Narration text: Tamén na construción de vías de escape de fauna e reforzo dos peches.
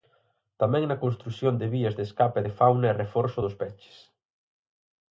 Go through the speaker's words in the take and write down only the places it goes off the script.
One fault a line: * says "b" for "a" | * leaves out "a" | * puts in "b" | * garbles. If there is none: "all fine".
all fine